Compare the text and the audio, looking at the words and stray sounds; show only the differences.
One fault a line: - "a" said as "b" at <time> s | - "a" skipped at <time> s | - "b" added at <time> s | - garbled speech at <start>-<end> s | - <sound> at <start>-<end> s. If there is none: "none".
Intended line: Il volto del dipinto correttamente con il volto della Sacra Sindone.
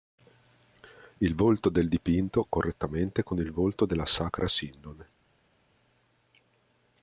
none